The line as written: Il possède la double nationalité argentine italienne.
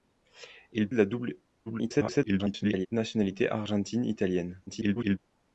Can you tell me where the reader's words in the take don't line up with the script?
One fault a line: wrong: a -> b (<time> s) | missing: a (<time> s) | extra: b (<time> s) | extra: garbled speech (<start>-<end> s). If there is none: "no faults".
missing: possède (0.9 s)
extra: garbled speech (1.7-2.9 s)
extra: garbled speech (4.7-5.2 s)